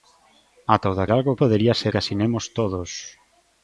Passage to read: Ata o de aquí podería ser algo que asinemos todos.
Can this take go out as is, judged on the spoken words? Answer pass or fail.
fail